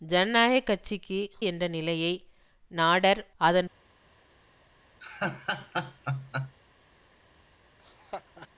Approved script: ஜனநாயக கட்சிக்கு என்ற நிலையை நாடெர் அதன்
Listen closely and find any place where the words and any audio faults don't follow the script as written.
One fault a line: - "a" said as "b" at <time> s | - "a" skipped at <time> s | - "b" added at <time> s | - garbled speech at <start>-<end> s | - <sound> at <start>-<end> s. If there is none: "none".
- laugh at 5.0-6.6 s
- laugh at 7.8-8.5 s